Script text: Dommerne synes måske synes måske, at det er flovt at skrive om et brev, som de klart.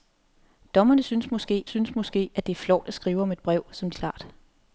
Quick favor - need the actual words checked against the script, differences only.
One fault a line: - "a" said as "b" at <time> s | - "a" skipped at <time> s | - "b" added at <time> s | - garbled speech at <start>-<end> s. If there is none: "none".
none